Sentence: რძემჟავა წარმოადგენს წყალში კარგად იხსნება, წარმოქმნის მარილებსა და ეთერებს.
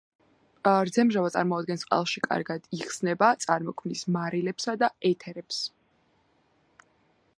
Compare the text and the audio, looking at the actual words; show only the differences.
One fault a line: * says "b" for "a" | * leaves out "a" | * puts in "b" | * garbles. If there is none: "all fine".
all fine